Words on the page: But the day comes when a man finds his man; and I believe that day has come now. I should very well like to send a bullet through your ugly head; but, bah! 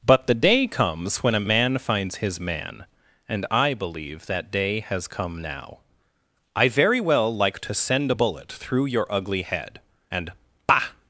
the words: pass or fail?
fail